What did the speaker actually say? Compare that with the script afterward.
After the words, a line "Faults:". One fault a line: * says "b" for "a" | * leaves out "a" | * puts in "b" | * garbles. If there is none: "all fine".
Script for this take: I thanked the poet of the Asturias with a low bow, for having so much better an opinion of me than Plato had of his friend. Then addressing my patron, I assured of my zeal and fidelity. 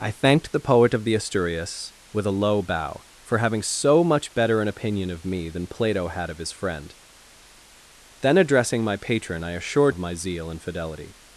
I thanked the poet of the Asturias with a low bow, for having so much better an opinion of me than Plato had of his friend. Then addressing my patron, I assured of my zeal and fidelity.
Faults:
all fine